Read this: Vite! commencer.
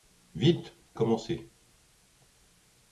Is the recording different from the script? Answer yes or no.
no